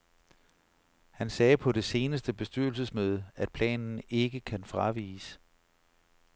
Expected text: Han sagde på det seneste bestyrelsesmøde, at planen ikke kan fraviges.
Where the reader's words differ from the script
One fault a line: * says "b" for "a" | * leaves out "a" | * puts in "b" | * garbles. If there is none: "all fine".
all fine